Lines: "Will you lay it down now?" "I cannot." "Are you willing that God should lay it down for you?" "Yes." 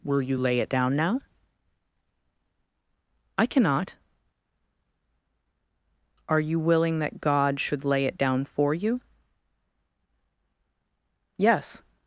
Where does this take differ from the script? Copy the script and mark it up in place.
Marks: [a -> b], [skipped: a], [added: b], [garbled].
"Will you lay it down now?" "I cannot." "Are you willing that God should lay it down for you?" "Yes."